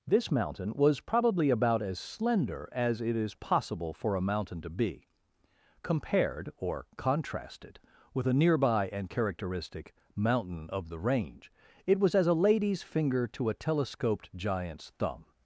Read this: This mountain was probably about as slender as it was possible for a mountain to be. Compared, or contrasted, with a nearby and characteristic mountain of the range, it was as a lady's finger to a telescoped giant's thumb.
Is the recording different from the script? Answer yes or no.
yes